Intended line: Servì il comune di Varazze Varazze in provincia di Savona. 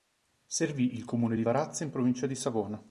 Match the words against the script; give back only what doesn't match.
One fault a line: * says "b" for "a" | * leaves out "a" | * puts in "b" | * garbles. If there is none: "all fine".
* leaves out "Varazze"